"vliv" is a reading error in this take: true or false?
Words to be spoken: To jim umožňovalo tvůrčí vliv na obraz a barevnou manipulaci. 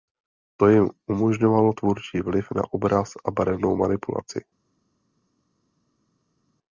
false